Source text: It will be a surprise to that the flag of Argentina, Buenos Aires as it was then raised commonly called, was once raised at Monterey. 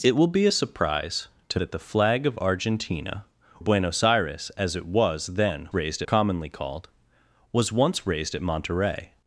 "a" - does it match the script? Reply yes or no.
yes